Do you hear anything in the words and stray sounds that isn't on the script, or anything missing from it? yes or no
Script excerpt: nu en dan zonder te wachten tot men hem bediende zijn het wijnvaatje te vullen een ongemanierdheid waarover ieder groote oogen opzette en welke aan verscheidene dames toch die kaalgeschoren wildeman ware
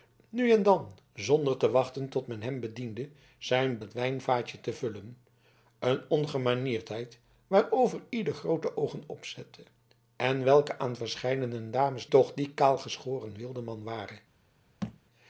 yes